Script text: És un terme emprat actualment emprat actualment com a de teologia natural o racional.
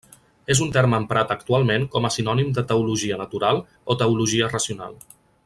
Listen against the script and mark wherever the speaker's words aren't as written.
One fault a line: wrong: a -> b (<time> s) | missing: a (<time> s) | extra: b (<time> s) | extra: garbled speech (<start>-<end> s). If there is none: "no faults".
missing: emprat actualment (1.9 s)
extra: sinònim (2.1 s)
extra: teologia (4.0 s)